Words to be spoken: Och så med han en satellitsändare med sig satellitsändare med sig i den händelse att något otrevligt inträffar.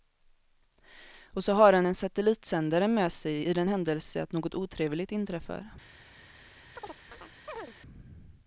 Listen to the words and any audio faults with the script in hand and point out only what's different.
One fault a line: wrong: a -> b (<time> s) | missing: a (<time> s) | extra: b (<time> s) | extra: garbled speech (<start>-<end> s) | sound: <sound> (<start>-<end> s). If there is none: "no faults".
wrong: med -> har (1.5 s)
missing: satellitsändare med sig (3.4 s)
sound: chirp (6.8-7.8 s)